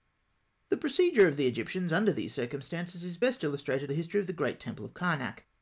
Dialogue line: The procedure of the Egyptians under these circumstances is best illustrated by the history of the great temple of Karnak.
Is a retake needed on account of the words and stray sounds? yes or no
yes